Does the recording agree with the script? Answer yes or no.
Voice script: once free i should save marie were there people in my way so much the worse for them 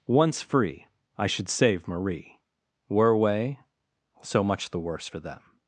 no